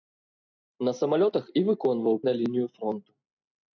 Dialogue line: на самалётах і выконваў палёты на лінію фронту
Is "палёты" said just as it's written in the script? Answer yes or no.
no